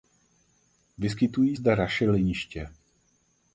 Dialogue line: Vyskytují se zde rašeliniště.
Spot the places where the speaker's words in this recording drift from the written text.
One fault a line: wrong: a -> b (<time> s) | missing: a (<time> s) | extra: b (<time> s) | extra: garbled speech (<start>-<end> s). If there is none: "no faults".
missing: se (1.6 s)